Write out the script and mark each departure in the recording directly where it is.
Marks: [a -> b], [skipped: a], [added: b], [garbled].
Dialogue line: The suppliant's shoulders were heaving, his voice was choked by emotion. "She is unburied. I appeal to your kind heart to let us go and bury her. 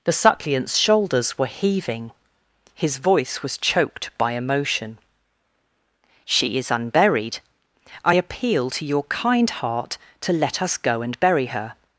The suppliant's shoulders were heaving, his voice was choked by emotion. "She is unburied. I appeal to your kind heart to let us go and bury her.